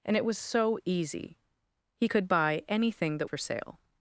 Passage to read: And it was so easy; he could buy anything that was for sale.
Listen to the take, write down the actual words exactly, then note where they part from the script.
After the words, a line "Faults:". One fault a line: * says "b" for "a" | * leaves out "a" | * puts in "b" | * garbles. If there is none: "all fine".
And it was so easy; he could buy anything that for sale.
Faults:
* leaves out "was"